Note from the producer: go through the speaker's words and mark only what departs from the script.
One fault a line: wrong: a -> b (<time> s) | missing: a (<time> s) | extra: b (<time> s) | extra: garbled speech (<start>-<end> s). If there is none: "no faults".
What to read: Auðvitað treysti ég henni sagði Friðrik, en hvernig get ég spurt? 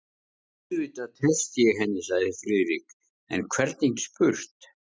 missing: get (4.0 s)